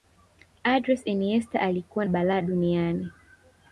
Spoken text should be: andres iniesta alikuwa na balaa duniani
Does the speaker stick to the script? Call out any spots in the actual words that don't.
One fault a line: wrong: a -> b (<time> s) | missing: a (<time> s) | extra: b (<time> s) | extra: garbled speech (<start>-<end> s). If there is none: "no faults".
missing: na (2.0 s)